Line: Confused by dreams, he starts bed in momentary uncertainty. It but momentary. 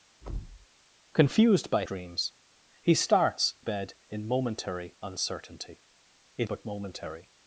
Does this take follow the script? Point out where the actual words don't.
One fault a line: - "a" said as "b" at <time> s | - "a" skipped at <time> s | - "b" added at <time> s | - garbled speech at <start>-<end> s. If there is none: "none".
none